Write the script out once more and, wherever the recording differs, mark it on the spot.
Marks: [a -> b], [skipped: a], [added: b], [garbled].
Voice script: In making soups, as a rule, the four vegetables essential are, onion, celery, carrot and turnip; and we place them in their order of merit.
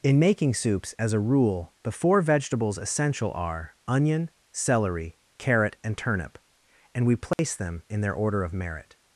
In making soups, as a rule, the four vegetables essential are, onion, celery, carrot and turnip; and we place them in their order of merit.